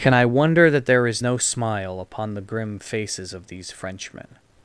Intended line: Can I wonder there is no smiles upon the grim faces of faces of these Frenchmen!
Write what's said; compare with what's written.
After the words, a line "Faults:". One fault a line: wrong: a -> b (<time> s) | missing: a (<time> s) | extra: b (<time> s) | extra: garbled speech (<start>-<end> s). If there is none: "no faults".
Can I wonder that there is no smile upon the grim faces of these Frenchmen!
Faults:
extra: that (0.7 s)
wrong: smiles -> smile (1.4 s)
missing: faces of (3.5 s)